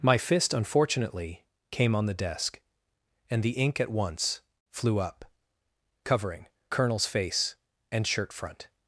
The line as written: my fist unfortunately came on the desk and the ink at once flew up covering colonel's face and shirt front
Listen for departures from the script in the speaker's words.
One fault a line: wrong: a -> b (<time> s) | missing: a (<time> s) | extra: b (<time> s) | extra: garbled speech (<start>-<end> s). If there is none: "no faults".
no faults